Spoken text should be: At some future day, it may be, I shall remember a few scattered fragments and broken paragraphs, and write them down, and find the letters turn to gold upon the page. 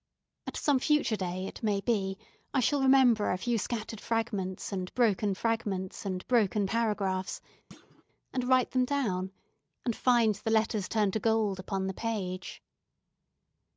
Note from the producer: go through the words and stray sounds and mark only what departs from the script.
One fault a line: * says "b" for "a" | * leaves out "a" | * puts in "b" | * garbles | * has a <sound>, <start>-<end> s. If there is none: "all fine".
* puts in "fragments and broken"
* has a thud, 7.7-8.0 s